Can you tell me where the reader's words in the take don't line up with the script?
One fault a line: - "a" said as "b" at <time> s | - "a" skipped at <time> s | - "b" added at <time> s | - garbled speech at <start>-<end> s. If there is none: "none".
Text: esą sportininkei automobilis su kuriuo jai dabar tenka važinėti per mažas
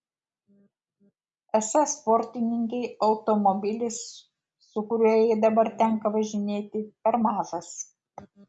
none